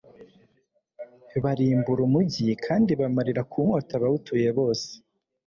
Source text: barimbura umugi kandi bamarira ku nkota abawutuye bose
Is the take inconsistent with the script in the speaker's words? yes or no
no